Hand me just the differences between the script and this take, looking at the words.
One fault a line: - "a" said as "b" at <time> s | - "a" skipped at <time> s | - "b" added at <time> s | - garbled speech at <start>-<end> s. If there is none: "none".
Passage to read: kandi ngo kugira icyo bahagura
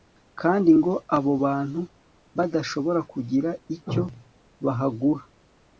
- "abo bantu badashobora" added at 1.2 s